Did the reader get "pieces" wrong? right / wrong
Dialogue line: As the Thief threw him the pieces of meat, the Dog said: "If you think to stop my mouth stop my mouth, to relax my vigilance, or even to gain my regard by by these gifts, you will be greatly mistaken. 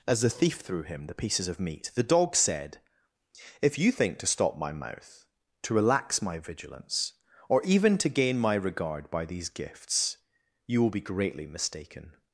right